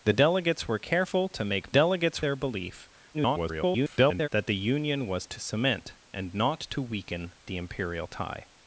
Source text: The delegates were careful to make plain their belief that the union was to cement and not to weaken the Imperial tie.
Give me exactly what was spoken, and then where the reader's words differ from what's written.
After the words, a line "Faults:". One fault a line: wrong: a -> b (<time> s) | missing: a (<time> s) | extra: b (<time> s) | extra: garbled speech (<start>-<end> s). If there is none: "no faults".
The delegates were careful to make delegates their belief [garbled] that the union was to cement and not to weaken the Imperial tie.
Faults:
wrong: plain -> delegates (1.7 s)
extra: garbled speech (3.1-4.3 s)